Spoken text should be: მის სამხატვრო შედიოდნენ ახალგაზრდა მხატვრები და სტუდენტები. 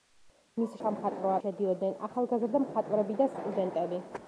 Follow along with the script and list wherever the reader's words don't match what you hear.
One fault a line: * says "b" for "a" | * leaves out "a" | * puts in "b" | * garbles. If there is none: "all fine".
all fine